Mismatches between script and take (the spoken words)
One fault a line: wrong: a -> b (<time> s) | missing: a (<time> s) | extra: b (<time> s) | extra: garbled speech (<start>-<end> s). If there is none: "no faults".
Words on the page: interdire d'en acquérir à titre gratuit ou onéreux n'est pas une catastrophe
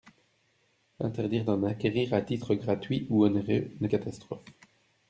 missing: pas une (3.9 s)